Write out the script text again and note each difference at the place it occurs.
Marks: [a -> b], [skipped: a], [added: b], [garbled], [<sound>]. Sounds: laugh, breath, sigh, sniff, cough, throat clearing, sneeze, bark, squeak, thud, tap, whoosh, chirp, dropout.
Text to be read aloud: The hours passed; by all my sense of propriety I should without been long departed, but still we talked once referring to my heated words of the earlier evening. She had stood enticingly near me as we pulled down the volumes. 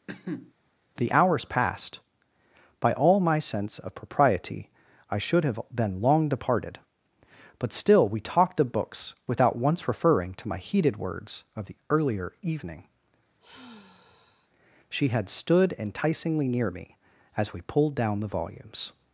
[cough] The hours passed; by all my sense of propriety I should [without -> have] been long departed, but still we talked [added: of books without] once referring to my heated words of the earlier evening. [sigh] She had stood enticingly near me as we pulled down the volumes.